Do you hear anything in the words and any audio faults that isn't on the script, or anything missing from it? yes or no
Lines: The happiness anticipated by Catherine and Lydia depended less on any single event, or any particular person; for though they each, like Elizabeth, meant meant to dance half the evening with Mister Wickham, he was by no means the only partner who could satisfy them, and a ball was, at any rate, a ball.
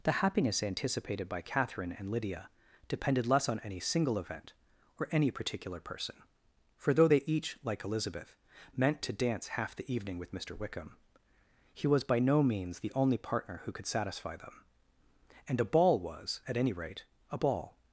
yes